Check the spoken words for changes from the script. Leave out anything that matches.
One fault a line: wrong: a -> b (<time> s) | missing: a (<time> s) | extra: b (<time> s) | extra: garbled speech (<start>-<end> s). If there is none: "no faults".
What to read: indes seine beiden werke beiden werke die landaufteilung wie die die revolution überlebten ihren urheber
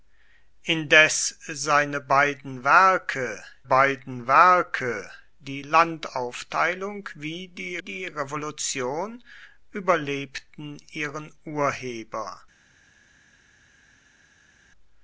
no faults